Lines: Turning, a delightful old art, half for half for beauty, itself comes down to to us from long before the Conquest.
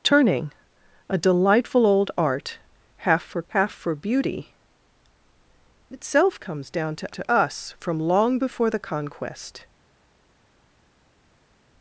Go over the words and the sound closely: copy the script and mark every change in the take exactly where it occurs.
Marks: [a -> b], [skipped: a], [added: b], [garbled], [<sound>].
Turning, a delightful old art, half for half for beauty, itself comes down to to us from long before the Conquest.